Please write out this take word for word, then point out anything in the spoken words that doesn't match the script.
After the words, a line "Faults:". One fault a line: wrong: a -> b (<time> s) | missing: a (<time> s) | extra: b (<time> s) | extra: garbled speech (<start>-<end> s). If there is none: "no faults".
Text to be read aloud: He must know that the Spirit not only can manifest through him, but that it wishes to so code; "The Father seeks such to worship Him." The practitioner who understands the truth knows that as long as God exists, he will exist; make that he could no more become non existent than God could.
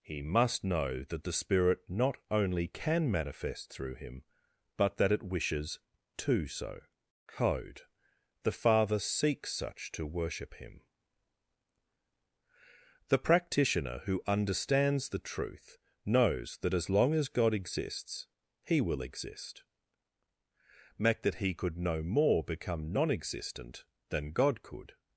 He must know that the Spirit not only can manifest through him, but that it wishes to so code; "The Father seeks such to worship Him." The practitioner who understands the truth knows that as long as God exists, he will exist; make that he could no more become non existent than God could.
Faults:
no faults